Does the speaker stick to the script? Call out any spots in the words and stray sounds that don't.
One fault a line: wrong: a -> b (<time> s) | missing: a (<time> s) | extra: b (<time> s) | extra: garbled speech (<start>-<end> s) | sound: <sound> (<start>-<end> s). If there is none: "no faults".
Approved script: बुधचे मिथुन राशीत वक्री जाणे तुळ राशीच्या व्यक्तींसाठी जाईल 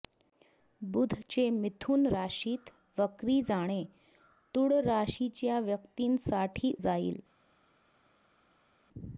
no faults